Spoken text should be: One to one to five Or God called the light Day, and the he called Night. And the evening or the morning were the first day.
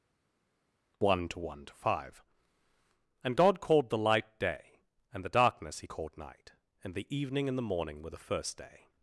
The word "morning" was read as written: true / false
true